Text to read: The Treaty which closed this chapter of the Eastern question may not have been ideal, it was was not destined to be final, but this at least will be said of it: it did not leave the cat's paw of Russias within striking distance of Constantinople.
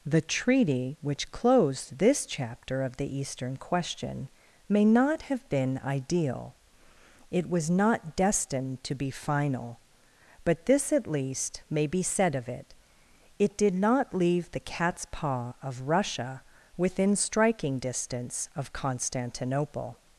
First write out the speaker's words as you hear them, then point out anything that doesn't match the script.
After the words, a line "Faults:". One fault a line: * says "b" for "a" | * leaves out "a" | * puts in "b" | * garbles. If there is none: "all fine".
The Treaty which closed this chapter of the Eastern question may not have been ideal, it was not destined to be final, but this at least may be said of it: it did not leave the cat's paw of Russia within striking distance of Constantinople.
Faults:
* leaves out "was"
* says "may" for "will"
* says "Russia" for "Russias"